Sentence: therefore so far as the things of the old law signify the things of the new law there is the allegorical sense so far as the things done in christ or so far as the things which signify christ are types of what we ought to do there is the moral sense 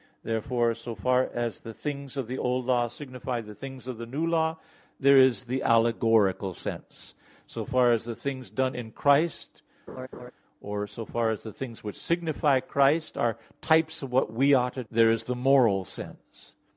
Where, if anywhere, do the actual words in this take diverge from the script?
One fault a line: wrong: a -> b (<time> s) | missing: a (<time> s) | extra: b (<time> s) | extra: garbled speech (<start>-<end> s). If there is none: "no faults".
missing: do (14.8 s)